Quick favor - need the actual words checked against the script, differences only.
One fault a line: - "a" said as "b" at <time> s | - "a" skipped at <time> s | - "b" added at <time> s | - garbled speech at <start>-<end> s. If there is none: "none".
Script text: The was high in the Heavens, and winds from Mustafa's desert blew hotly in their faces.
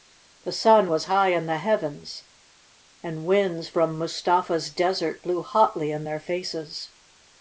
- "sun" added at 0.5 s